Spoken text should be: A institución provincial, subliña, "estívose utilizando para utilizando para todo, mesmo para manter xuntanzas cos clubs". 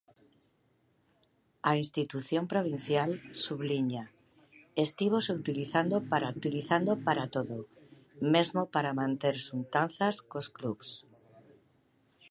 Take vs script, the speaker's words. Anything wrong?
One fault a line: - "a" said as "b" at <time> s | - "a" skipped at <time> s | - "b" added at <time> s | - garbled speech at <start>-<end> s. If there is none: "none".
none